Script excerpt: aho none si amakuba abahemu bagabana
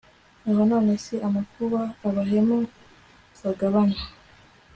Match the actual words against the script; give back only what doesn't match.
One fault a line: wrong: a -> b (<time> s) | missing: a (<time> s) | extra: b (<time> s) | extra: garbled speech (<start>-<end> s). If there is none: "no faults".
no faults